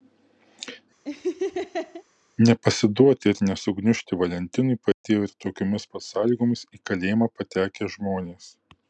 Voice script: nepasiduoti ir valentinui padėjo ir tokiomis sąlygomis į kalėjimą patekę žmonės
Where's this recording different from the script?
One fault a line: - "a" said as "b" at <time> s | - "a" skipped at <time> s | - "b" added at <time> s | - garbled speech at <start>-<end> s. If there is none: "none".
- "nesugniužti" added at 3.5 s
- "pat" added at 5.9 s